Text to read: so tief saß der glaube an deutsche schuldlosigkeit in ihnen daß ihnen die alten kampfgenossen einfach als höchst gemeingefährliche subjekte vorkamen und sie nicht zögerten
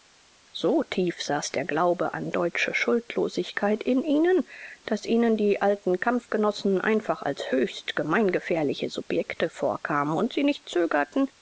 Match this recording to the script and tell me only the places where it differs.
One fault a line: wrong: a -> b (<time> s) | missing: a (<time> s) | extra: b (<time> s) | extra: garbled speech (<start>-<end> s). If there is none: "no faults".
no faults